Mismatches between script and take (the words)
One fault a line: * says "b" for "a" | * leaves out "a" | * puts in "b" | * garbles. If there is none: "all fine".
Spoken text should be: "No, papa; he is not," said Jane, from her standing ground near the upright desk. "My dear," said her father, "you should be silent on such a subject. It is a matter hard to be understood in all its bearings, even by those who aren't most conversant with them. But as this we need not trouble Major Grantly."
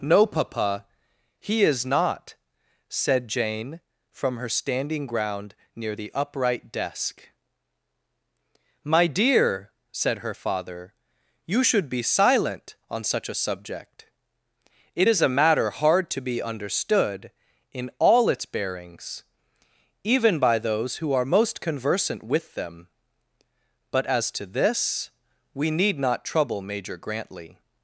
* says "are" for "aren't"
* puts in "to"